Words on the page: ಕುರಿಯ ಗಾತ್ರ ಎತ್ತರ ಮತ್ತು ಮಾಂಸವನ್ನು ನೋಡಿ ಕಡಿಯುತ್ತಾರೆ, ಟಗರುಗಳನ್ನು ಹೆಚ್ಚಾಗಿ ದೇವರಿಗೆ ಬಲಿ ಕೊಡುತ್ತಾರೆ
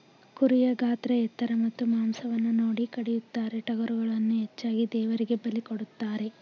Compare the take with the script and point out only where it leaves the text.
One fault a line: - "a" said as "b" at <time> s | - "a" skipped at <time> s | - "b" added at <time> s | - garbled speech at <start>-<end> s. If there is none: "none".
none